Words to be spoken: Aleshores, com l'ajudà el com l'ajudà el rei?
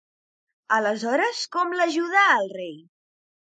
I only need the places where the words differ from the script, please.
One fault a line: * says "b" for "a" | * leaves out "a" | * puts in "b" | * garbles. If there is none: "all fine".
* leaves out "com l'ajudà el"